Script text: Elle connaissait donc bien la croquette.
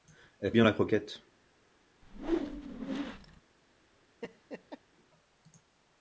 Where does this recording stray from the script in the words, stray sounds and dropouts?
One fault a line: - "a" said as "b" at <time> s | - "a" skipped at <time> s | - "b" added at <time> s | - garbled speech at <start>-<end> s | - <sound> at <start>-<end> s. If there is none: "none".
- "connaissait donc" skipped at 0.5 s
- whoosh at 2.0-3.4 s
- laugh at 4.2-4.8 s